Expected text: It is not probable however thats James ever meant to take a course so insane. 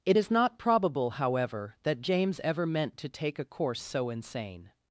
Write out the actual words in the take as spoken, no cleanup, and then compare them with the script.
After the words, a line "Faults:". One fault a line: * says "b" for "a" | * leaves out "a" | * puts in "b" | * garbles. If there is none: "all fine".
It is not probable however that James ever meant to take a course so insane.
Faults:
* says "that" for "thats"